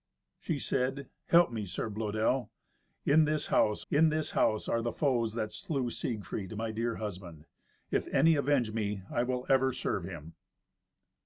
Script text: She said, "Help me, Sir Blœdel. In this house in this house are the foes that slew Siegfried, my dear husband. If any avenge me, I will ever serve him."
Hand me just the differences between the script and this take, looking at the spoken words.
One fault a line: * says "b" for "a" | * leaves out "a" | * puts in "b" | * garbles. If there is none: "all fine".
all fine